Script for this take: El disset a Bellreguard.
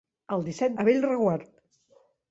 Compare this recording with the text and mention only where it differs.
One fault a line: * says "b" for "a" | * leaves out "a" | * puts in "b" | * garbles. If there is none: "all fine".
all fine